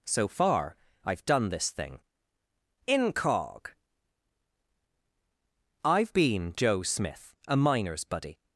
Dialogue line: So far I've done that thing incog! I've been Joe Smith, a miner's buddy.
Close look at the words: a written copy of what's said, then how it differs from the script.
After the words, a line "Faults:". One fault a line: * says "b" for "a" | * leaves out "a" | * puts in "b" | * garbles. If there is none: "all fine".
So far I've done this thing incog! I've been Joe Smith, a miner's buddy.
Faults:
* says "this" for "that"